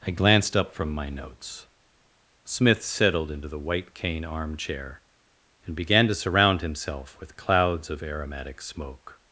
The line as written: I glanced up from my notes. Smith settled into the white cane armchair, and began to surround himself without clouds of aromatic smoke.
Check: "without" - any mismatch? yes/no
yes